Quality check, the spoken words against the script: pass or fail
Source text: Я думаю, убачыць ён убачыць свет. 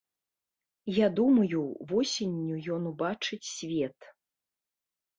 fail